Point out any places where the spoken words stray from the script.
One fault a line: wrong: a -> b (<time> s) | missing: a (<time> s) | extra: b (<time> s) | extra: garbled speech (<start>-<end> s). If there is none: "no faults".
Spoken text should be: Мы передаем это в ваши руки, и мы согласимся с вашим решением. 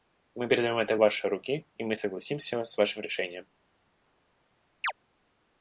no faults